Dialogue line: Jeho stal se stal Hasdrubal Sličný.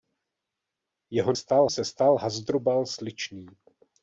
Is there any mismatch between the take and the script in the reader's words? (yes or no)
no